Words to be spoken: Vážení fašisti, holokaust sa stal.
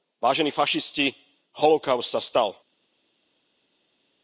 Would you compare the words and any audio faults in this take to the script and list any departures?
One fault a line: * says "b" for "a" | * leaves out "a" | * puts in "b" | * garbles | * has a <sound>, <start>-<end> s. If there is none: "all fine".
all fine